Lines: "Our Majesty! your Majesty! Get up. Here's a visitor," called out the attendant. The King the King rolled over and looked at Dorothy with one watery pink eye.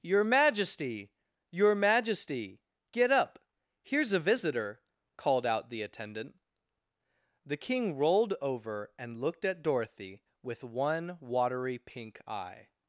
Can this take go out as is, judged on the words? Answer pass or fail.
fail